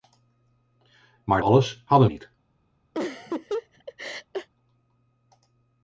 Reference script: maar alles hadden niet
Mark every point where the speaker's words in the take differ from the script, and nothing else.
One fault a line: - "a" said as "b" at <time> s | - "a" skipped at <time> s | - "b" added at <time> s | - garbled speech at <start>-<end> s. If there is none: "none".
none